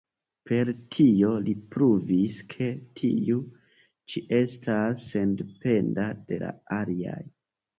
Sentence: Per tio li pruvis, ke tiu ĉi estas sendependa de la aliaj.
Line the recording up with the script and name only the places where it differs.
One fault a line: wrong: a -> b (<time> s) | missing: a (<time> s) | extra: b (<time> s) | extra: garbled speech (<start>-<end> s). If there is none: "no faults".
no faults